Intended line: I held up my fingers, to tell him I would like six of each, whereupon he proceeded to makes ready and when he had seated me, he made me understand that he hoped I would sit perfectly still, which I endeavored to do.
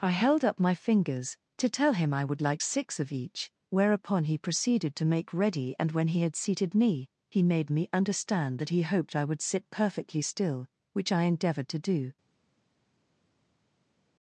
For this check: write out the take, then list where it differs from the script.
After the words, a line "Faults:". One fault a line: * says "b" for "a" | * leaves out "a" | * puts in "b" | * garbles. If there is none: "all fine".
I held up my fingers, to tell him I would like six of each, whereupon he proceeded to make ready and when he had seated me, he made me understand that he hoped I would sit perfectly still, which I endeavored to do.
Faults:
* says "make" for "makes"